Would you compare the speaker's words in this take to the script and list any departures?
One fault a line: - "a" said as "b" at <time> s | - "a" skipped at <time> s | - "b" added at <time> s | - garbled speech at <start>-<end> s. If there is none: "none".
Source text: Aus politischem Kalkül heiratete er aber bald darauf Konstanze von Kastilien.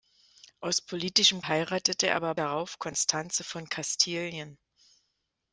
- "Kalkül" skipped at 1.4 s
- "bald" skipped at 2.3 s